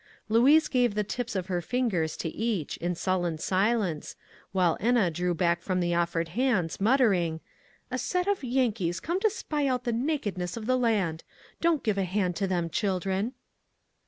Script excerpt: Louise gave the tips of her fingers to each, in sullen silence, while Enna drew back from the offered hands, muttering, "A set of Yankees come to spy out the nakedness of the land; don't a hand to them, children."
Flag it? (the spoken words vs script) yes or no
yes